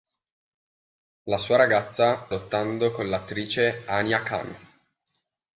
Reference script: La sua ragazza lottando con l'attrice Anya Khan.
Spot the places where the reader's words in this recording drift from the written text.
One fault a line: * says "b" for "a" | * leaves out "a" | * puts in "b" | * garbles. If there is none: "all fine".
all fine